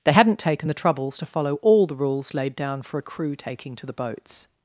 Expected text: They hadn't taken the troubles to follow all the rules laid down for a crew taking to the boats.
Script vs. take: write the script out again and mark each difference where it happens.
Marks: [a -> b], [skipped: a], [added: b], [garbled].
They hadn't taken the troubles to follow all the rules laid down for a crew taking to the boats.